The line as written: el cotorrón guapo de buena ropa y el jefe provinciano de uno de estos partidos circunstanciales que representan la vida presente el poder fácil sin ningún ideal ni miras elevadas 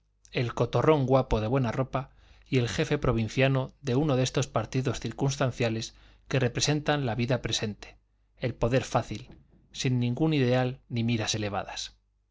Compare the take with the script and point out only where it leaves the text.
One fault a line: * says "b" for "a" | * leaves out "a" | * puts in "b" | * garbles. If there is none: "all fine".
all fine